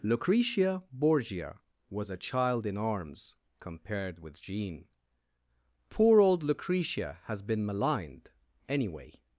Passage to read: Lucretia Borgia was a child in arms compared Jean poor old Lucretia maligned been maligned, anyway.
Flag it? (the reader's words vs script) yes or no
yes